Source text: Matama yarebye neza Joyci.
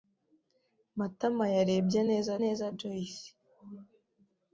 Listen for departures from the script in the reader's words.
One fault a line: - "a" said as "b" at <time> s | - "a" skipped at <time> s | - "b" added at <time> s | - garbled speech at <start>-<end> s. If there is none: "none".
- "neza" added at 2.4 s